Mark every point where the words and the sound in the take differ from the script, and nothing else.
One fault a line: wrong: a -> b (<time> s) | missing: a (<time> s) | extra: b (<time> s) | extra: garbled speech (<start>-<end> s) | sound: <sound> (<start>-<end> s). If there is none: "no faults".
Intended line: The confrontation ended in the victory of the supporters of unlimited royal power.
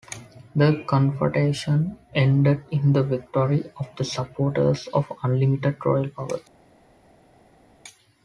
no faults